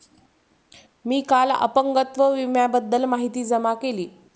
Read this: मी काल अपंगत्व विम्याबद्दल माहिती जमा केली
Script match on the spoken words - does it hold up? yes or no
yes